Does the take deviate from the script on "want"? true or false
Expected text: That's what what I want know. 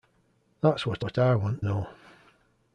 false